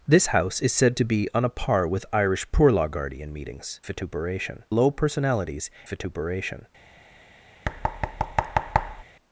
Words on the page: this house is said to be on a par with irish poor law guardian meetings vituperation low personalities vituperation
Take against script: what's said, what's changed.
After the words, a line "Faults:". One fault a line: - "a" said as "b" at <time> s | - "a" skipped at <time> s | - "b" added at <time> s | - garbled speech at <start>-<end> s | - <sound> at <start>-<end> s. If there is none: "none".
this house is said to be on a par with irish poor law guardian meetings vituperation low personalities vituperation
Faults:
- thud at 7.6-9.0 s